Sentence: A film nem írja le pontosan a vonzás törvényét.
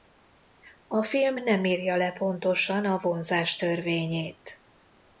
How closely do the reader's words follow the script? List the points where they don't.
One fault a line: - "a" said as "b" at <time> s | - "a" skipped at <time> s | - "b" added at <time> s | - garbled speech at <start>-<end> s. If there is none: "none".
none